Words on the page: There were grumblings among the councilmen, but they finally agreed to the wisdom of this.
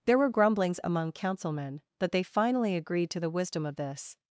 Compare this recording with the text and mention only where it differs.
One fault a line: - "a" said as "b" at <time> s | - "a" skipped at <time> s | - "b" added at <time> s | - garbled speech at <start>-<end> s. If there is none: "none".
- "the" skipped at 1.1 s